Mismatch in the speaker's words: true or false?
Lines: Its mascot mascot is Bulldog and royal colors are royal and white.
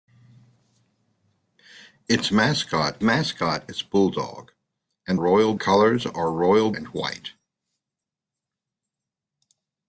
false